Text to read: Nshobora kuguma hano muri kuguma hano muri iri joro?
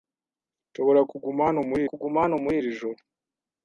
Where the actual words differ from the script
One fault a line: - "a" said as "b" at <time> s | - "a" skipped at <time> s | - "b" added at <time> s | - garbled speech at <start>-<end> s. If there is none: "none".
none